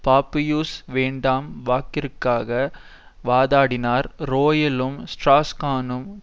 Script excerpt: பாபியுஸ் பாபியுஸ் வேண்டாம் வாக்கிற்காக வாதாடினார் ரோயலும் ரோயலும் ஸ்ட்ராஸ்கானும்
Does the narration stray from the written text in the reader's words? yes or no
yes